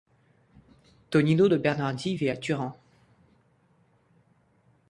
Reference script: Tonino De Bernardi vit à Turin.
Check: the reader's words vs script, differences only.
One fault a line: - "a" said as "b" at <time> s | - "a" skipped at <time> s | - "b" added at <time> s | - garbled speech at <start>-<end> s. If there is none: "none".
none